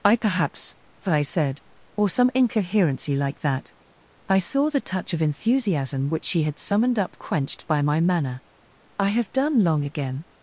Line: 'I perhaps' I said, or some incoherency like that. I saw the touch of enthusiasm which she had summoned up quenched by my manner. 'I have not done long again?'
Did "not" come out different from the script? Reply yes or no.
yes